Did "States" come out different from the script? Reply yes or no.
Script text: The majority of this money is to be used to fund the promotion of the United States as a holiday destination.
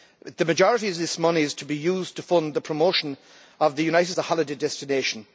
yes